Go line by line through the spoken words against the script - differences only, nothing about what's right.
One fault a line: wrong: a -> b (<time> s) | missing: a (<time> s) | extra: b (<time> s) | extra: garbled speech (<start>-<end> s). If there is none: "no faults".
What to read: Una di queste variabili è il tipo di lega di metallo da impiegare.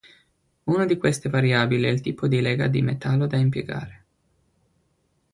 no faults